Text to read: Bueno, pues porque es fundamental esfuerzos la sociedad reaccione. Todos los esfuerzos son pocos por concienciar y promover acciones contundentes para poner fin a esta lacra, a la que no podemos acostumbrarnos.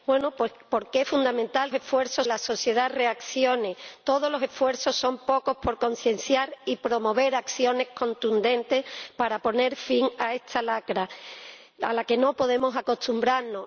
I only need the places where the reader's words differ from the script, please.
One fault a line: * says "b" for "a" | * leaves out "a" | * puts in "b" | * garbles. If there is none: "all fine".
all fine